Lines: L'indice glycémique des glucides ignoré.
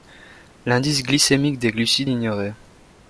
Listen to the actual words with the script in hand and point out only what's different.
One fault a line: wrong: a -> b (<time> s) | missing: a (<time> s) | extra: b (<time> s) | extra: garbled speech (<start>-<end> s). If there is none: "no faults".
no faults